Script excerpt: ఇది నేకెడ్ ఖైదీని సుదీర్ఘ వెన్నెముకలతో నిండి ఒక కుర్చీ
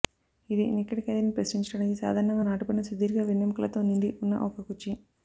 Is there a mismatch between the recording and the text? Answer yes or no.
yes